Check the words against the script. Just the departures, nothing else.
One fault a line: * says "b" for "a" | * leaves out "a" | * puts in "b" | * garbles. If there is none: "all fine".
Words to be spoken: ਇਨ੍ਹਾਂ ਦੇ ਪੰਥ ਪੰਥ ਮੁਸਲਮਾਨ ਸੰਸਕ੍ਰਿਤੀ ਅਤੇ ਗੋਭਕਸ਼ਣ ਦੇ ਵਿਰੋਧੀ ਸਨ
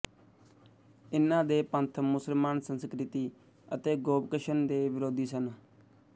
* leaves out "ਪੰਥ"